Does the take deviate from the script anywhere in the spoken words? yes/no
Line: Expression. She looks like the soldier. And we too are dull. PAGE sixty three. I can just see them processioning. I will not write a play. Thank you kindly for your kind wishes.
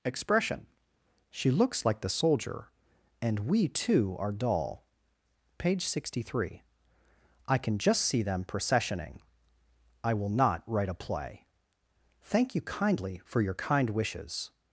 no